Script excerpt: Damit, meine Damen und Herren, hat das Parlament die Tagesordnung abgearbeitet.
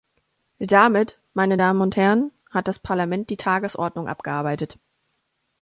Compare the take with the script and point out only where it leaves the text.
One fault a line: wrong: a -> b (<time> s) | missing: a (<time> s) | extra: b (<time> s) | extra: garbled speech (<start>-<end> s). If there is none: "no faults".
no faults